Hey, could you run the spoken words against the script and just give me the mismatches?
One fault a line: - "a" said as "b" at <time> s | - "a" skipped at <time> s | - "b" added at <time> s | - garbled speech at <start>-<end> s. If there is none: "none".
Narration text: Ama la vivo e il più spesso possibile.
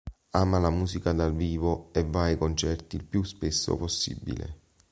- "musica dal" added at 0.7 s
- "va ai concerti" added at 2.0 s